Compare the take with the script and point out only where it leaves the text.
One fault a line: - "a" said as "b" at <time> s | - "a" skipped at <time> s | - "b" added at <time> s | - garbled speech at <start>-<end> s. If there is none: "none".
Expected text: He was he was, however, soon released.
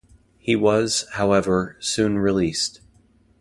- "he was" skipped at 1.1 s